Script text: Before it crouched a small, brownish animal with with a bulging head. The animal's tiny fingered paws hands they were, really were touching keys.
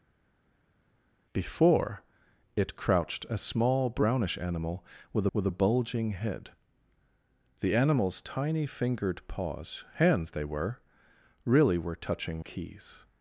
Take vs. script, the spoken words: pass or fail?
pass